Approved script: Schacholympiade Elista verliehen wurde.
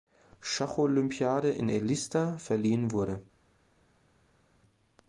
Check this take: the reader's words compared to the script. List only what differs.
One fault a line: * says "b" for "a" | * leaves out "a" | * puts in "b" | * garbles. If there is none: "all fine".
* puts in "in"